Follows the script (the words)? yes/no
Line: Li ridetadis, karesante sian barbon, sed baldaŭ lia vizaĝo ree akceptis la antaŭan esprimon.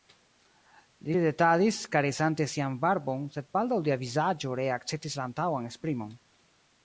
yes